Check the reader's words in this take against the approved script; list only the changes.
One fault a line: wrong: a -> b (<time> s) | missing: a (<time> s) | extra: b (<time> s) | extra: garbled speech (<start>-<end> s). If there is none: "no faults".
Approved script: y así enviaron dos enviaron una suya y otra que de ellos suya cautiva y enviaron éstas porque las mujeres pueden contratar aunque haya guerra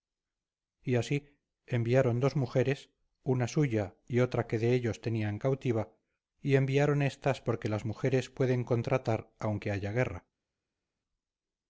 wrong: enviaron -> mujeres (2.4 s)
wrong: suya -> tenían (5.0 s)